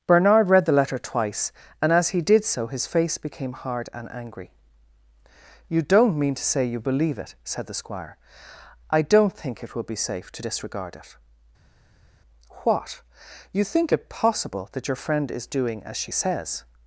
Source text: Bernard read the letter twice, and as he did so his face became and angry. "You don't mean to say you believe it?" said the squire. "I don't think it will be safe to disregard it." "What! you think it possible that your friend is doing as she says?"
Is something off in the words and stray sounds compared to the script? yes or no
yes